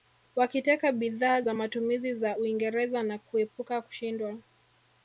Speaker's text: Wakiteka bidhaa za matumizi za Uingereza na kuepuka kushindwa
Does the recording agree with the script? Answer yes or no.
yes